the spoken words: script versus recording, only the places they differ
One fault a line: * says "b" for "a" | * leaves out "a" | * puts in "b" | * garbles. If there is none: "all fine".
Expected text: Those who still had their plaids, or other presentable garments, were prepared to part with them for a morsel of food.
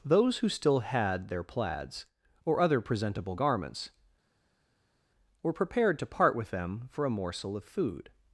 all fine